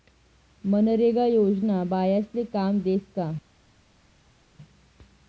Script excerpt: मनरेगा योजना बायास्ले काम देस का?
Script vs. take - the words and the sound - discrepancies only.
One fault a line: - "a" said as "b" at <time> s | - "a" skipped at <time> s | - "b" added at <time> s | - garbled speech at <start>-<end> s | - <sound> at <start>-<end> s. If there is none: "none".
none